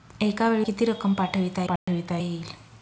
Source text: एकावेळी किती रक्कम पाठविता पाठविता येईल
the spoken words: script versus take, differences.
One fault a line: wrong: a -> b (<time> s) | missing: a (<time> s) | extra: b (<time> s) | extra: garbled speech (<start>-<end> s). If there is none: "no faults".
no faults